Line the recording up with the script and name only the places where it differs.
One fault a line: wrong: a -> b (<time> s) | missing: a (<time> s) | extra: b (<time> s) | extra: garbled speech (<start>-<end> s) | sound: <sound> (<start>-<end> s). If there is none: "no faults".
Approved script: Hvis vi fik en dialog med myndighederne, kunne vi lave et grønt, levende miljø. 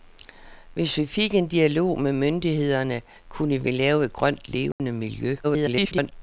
sound: dropout (4.7-4.8 s)
extra: garbled speech (5.4-6.1 s)